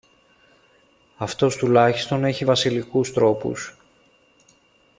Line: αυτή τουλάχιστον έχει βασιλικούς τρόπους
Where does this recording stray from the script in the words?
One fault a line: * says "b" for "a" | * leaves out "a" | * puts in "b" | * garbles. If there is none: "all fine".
* says "αυτός" for "αυτή"